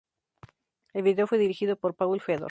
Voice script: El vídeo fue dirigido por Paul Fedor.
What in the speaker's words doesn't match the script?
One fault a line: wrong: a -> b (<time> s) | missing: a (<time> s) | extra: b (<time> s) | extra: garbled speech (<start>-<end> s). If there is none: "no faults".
no faults